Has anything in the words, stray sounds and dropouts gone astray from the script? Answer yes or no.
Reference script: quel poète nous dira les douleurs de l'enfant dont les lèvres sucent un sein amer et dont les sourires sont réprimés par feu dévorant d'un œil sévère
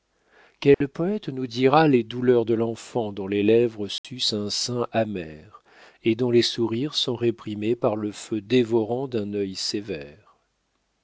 yes